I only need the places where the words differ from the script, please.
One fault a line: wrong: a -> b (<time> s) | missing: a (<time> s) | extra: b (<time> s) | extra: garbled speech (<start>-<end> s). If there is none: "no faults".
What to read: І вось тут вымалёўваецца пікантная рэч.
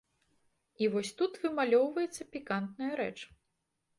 no faults